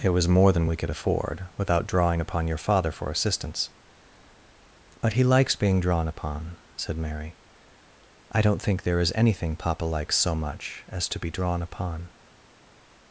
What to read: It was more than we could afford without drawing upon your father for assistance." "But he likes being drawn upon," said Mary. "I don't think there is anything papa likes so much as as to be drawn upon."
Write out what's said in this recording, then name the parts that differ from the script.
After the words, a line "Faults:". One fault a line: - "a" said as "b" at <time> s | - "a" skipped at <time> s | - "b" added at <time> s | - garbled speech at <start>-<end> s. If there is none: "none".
It was more than we could afford without drawing upon your father for assistance." "But he likes being drawn upon," said Mary. "I don't think there is anything papa likes so much as to be drawn upon."
Faults:
- "as" skipped at 11.1 s